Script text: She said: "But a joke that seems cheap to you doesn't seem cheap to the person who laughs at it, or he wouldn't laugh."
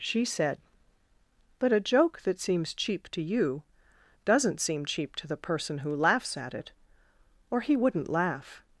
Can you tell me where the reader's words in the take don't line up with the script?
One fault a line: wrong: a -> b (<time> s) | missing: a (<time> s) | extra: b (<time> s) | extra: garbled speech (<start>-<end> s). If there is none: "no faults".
no faults